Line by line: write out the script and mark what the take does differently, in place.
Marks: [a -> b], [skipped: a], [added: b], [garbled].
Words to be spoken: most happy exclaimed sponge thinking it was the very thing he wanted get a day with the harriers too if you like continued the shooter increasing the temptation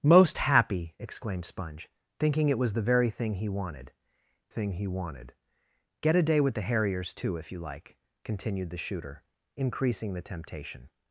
most happy exclaimed sponge thinking it was the very thing he wanted [added: thing he wanted] get a day with the harriers too if you like continued the shooter increasing the temptation